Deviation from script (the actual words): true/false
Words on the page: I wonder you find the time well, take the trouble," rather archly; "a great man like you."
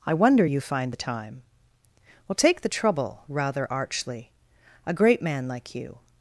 false